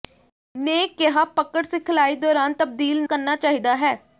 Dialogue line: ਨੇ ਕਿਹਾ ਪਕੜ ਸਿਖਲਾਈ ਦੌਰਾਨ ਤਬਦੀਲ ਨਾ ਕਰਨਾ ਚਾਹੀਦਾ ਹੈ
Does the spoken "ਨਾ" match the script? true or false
false